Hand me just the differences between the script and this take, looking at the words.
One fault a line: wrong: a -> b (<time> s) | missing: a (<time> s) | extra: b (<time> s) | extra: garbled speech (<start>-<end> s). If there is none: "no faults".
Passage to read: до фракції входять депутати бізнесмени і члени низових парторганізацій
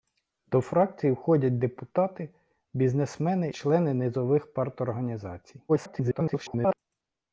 missing: і (3.5 s)
extra: garbled speech (5.7-6.8 s)